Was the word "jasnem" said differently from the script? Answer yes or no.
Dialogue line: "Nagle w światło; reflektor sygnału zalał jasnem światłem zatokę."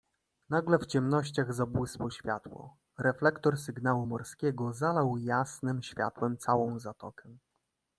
no